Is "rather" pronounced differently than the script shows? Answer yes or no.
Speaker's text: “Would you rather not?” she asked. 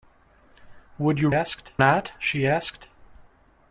yes